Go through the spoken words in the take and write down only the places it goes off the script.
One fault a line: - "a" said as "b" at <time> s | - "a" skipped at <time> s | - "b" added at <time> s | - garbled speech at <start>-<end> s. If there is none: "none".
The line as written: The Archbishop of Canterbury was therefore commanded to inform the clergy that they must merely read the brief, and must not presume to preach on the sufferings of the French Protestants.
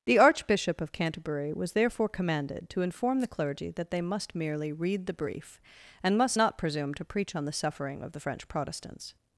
- "sufferings" said as "suffering" at 7.5 s